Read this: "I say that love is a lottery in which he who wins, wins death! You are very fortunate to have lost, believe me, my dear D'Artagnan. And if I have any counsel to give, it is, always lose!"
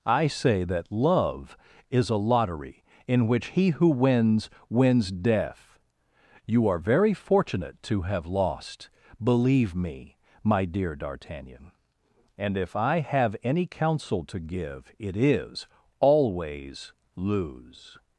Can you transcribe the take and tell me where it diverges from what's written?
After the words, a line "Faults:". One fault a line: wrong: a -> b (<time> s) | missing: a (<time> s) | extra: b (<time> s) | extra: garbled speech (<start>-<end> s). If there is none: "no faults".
"I say that love is a lottery in which he who wins, wins death! You are very fortunate to have lost, believe me, my dear D'Artagnan. And if I have any counsel to give, it is, always lose!"
Faults:
no faults